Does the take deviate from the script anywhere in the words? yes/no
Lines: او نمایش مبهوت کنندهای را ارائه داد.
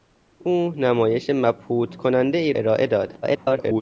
yes